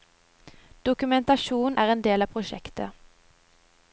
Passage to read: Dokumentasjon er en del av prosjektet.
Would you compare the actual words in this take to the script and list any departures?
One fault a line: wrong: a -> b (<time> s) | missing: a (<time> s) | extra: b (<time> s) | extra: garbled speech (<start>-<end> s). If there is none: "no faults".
no faults